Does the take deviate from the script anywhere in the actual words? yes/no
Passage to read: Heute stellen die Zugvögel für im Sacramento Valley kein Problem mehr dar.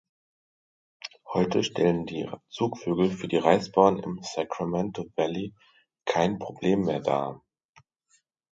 yes